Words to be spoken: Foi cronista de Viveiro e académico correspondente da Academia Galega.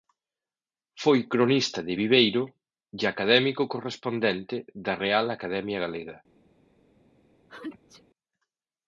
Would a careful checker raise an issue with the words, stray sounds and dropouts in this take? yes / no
yes